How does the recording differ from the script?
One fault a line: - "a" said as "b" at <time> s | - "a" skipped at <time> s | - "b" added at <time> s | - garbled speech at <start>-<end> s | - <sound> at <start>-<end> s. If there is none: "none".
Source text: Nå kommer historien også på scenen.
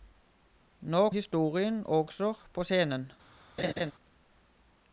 - "kommer" skipped at 1.1 s
- laugh at 3.6-3.9 s